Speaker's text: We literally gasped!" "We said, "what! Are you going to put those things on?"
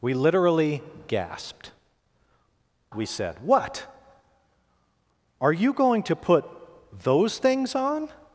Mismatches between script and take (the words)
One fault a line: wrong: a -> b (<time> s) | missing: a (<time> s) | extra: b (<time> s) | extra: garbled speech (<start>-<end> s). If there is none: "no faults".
no faults